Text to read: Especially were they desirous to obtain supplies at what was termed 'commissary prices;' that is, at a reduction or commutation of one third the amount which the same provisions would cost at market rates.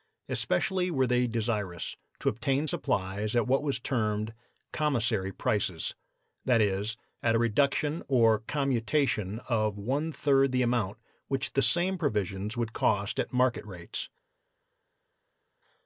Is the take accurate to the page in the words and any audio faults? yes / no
yes